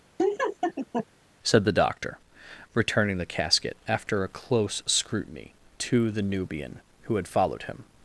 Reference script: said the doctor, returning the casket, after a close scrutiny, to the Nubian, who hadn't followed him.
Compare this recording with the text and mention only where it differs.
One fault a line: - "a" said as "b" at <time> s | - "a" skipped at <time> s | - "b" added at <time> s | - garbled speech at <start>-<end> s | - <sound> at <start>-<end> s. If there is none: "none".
- laugh at 0.2-1.1 s
- "hadn't" said as "had" at 7.2 s